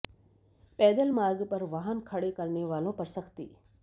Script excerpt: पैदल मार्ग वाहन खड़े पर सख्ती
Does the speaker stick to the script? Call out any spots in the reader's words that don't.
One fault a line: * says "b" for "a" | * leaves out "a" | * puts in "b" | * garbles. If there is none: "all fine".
* puts in "पर"
* puts in "करने वालों"